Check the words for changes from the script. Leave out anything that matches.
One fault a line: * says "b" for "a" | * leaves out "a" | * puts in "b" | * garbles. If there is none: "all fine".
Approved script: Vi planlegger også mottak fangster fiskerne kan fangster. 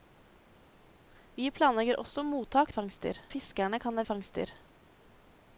all fine